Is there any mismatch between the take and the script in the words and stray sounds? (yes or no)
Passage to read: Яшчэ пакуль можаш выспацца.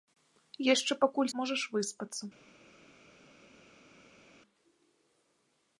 no